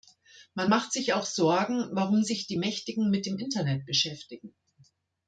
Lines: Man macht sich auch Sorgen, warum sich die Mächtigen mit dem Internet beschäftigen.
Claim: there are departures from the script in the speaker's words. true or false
false